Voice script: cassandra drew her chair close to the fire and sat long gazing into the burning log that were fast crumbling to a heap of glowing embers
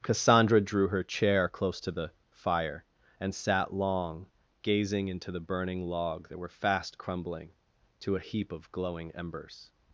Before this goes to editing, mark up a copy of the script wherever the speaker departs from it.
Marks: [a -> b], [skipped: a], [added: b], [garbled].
cassandra drew her chair close to the fire and sat long gazing into the burning log that were fast crumbling to a heap of glowing embers